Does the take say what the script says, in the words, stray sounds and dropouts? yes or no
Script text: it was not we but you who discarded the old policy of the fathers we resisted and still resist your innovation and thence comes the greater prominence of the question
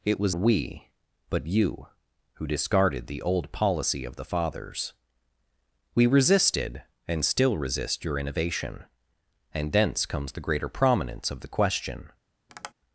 no